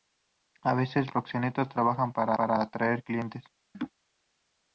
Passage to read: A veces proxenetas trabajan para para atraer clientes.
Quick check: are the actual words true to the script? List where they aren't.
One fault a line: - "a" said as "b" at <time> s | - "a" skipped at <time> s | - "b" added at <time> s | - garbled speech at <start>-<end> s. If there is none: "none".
none